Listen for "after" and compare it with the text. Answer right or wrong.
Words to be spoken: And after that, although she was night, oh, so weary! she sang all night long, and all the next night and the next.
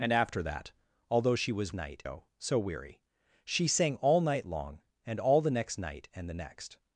right